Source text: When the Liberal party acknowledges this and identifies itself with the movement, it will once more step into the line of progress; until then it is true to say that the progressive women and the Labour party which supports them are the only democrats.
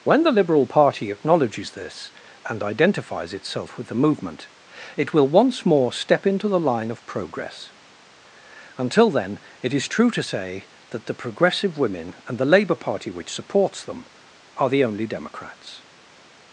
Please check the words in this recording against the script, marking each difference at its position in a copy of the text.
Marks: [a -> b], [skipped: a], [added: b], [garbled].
When the Liberal party acknowledges this and identifies itself with the movement, it will once more step into the line of progress; until then it is true to say that the progressive women and the Labour party which supports them are the only democrats.